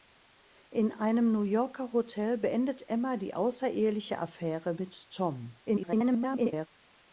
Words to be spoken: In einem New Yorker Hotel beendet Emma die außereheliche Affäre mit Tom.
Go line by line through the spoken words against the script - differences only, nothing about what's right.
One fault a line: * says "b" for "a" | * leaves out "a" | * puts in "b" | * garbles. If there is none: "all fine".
* garbles